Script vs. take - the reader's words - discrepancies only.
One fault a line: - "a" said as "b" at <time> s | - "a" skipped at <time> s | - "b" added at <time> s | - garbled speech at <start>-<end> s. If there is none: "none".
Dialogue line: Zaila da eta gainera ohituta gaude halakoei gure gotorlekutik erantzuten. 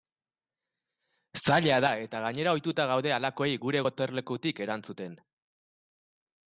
none